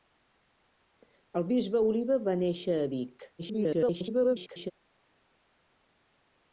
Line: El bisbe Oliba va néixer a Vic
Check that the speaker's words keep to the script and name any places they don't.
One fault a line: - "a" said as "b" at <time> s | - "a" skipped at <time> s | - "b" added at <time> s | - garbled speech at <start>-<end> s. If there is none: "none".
- garbled speech at 3.4-4.7 s